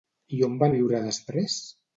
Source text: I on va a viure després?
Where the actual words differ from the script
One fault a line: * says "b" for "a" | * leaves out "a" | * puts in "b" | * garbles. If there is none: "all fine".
all fine